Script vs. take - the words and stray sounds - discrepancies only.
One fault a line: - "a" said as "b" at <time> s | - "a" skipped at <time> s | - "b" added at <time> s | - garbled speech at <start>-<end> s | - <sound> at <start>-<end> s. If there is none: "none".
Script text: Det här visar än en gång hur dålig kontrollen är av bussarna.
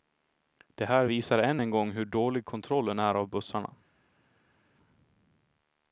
none